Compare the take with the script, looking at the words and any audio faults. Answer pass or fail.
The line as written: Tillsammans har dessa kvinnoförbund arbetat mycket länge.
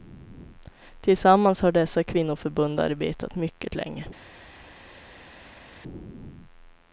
pass